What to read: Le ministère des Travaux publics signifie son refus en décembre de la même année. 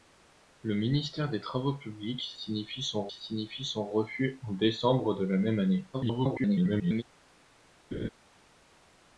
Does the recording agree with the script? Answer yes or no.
no